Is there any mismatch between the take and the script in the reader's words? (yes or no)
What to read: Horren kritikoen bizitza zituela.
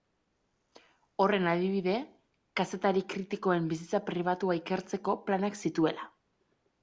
yes